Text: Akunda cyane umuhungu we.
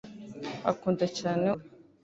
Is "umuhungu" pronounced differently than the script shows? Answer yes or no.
yes